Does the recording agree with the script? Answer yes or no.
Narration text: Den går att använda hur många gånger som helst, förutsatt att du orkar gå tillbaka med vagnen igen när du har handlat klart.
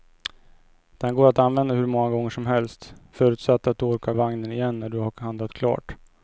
no